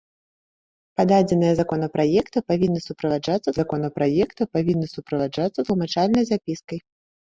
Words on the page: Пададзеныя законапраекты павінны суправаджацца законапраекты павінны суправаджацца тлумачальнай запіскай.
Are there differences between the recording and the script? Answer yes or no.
no